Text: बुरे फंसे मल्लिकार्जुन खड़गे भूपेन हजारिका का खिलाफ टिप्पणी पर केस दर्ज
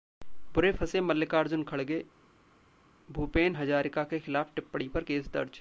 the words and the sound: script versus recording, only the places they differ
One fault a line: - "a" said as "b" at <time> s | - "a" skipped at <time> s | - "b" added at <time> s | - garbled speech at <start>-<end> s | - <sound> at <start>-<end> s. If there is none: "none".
- "का" said as "के" at 4.0 s